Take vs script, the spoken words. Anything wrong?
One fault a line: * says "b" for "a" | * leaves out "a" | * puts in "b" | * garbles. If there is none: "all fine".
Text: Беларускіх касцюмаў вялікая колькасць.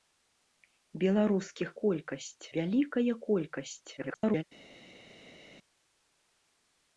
* says "колькасць" for "касцюмаў"
* garbles